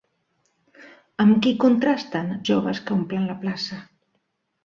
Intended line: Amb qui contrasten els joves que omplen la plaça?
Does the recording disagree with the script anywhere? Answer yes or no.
yes